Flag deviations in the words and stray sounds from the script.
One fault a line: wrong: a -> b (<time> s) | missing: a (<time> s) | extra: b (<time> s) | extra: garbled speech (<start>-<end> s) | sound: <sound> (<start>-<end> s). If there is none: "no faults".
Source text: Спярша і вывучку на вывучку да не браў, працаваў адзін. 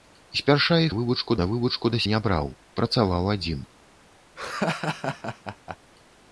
sound: laugh (4.4-5.8 s)